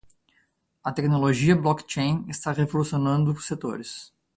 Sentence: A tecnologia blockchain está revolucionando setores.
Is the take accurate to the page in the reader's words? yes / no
yes